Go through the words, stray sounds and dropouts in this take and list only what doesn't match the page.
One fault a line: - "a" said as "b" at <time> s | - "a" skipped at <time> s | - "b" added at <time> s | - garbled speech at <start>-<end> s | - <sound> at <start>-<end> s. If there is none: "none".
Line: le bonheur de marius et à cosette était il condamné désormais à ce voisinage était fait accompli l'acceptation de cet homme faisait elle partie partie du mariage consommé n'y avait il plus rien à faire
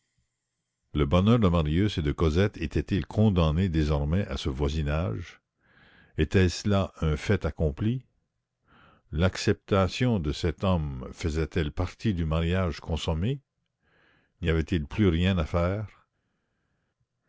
- "à" said as "de" at 2.0 s
- "ce là un" added at 6.5 s
- "partie" skipped at 12.1 s